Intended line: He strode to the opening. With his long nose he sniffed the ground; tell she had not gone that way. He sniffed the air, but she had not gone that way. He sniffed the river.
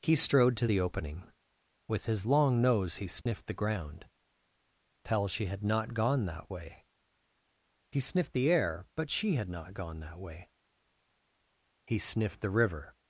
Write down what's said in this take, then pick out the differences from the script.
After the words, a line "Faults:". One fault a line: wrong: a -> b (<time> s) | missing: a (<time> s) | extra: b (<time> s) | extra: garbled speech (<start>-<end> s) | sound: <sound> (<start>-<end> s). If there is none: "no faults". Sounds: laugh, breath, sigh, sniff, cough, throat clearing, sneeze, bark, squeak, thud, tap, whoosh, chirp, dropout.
He strode to the opening. With his long nose he sniffed the ground; tell she had not gone that way. He sniffed the air, but she had not gone that way. He sniffed the river.
Faults:
sound: dropout (3.2-3.3 s)